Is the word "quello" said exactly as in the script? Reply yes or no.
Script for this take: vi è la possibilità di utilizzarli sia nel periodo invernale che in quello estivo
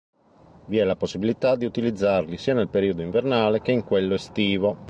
yes